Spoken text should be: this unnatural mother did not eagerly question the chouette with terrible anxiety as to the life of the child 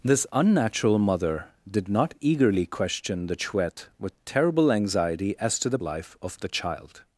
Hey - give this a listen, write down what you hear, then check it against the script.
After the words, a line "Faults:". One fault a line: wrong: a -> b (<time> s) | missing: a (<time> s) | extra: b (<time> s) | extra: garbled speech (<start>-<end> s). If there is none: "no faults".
this unnatural mother did not eagerly question the chouette with terrible anxiety as to the life of the child
Faults:
no faults